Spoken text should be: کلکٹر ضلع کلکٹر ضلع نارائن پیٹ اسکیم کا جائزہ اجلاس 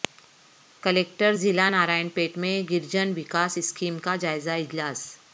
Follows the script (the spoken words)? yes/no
no